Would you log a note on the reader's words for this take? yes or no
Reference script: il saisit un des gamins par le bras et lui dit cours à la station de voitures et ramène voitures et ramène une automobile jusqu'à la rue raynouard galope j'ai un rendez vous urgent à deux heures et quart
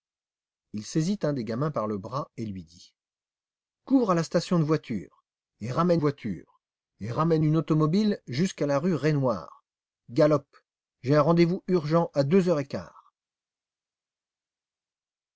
no